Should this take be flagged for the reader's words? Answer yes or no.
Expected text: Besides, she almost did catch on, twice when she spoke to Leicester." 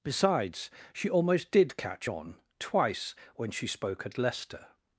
yes